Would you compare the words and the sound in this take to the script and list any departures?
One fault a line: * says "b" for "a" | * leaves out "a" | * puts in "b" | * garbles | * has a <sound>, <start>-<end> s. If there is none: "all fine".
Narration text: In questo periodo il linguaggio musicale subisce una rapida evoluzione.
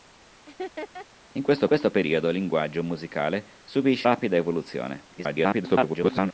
* has a laugh, 0.5-1.1 s
* puts in "questo"
* leaves out "una"
* garbles